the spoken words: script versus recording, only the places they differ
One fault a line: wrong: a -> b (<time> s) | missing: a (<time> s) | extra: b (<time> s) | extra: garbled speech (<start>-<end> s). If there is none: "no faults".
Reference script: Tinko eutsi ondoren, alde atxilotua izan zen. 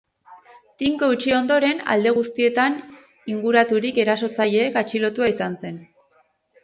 extra: guztietan inguraturik erasotzaileek (2.2 s)